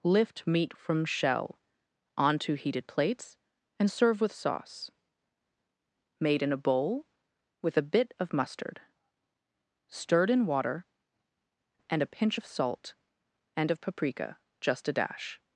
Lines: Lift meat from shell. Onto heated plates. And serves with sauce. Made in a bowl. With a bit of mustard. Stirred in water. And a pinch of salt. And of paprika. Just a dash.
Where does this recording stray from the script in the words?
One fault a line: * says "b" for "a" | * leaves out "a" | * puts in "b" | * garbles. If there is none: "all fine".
* says "serve" for "serves"